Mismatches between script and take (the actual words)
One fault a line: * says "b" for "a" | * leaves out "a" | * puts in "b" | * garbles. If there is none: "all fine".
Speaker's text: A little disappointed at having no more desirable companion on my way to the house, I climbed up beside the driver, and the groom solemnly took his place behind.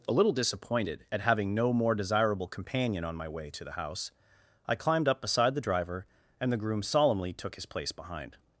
all fine